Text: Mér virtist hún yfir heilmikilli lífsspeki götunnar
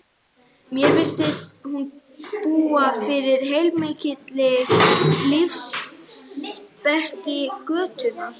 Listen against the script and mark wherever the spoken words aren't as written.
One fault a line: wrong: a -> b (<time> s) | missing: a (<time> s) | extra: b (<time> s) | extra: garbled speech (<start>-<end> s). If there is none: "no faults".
extra: búa (2.5 s)